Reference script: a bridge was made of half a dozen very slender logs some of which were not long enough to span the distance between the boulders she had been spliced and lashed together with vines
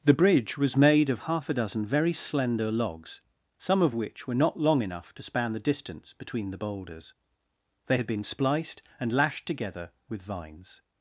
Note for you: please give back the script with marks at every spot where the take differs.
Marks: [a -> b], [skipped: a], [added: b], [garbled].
[a -> the] bridge was made of half a dozen very slender logs some of which were not long enough to span the distance between the boulders [she -> they] had been spliced and lashed together with vines